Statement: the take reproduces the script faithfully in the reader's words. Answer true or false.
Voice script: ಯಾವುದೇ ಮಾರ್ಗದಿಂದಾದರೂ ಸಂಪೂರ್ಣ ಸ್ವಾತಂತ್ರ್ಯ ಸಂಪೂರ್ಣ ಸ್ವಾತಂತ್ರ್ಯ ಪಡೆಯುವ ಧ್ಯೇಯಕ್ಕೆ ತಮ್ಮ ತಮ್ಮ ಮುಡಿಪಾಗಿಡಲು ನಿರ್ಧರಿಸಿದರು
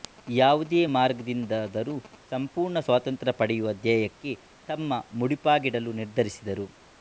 false